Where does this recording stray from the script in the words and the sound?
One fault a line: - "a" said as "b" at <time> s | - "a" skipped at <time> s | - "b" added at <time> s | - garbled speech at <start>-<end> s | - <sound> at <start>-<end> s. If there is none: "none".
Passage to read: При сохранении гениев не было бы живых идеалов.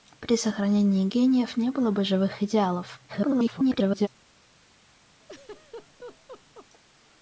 - garbled speech at 3.1-4.1 s
- laugh at 5.2-6.7 s